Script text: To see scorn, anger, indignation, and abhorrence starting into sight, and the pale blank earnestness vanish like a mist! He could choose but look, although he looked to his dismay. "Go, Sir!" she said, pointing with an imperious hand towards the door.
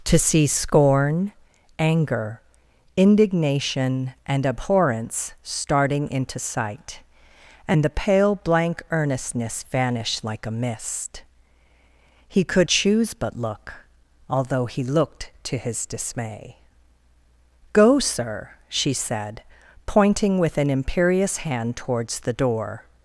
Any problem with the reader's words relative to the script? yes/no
no